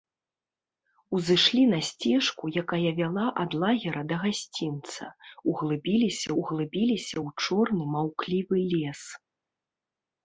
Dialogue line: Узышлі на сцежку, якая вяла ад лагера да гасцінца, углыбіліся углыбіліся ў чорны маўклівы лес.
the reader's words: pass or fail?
pass